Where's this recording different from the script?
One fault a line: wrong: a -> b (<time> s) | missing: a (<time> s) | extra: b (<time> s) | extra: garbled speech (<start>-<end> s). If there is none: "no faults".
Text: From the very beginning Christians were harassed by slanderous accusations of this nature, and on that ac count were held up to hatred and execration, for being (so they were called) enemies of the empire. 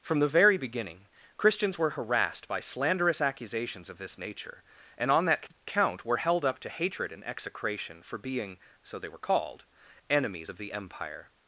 missing: ac (5.5 s)